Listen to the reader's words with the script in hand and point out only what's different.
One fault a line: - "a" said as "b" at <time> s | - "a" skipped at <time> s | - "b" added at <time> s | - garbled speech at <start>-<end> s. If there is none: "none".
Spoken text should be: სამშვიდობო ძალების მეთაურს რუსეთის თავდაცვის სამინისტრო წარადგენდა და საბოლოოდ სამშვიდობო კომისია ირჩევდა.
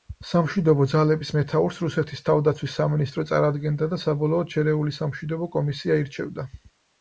- "შერეული" added at 4.6 s